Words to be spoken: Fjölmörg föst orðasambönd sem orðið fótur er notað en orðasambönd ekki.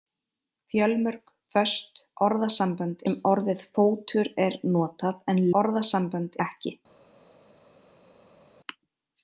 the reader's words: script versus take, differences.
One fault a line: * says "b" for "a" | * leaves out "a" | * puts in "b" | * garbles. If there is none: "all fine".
all fine